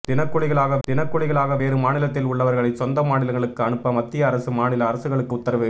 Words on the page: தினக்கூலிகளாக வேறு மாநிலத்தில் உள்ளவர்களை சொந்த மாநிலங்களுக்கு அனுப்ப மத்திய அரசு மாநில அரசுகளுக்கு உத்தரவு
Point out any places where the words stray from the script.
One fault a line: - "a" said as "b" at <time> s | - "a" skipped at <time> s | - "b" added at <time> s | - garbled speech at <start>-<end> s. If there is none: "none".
- "தினக்கூலிகளாக" added at 0.8 s